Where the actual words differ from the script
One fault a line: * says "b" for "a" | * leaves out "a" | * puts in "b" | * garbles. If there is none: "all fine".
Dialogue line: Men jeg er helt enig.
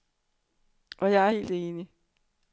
* says "Og" for "Men"